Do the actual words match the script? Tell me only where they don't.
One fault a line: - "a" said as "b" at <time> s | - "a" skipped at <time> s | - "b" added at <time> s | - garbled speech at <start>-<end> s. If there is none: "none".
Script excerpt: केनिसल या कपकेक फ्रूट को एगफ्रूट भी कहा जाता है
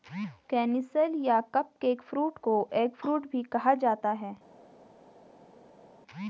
none